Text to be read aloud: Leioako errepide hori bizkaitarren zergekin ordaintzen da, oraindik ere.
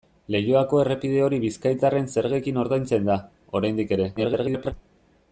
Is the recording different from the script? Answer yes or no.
yes